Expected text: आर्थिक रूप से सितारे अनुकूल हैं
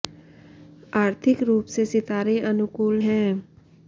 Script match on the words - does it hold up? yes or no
yes